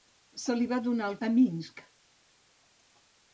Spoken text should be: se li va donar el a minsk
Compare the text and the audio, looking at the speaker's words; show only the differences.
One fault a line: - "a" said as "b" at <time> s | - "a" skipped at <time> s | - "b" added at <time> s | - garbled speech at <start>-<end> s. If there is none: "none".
none